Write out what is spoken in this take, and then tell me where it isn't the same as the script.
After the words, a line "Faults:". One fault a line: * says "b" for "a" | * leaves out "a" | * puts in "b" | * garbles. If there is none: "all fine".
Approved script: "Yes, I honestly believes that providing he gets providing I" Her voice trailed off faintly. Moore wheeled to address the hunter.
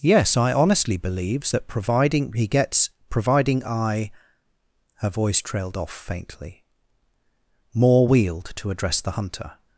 "Yes, I honestly believes that providing he gets providing I" Her voice trailed off faintly. Moore wheeled to address the hunter.
Faults:
all fine